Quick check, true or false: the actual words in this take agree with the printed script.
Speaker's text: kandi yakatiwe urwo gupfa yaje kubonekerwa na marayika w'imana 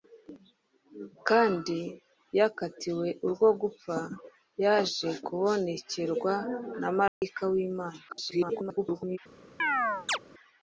false